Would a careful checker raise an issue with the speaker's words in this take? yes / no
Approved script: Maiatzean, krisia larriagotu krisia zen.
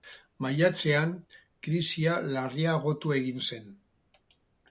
yes